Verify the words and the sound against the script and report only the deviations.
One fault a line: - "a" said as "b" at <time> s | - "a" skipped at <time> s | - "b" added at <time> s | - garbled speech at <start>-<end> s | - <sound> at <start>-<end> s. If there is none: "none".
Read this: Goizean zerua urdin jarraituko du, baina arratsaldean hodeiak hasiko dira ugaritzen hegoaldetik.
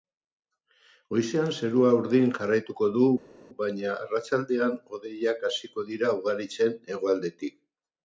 none